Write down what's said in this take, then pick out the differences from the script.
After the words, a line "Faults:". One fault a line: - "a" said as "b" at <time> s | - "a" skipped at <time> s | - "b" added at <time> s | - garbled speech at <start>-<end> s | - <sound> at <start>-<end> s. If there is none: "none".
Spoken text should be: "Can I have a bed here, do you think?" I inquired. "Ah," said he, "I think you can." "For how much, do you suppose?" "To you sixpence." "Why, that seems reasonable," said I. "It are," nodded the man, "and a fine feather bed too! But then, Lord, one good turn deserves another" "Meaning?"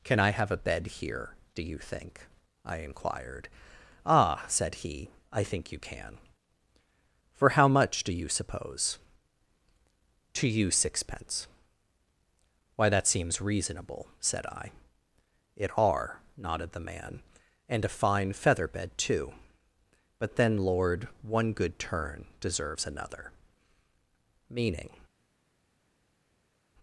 "Can I have a bed here, do you think?" I inquired. "Ah," said he, "I think you can." "For how much, do you suppose?" "To you sixpence." "Why, that seems reasonable," said I. "It are," nodded the man, "and a fine feather bed too! But then, Lord, one good turn deserves another" "Meaning?"
Faults:
none